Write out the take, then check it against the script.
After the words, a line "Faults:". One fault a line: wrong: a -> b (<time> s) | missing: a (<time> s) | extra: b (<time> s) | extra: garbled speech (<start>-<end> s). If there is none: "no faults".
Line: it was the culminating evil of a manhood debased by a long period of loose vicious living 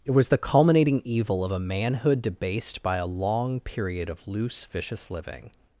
it was the culminating evil of a manhood debased by a long period of loose vicious living
Faults:
no faults